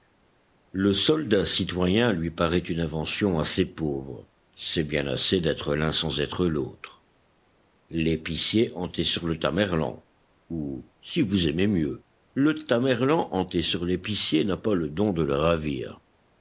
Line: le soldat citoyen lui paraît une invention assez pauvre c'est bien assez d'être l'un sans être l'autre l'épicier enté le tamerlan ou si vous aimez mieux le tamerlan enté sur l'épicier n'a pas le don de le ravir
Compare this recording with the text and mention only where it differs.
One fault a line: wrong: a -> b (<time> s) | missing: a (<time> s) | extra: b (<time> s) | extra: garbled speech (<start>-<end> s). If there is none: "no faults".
extra: sur (9.0 s)